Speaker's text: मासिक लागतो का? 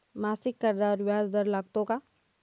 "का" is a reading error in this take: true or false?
false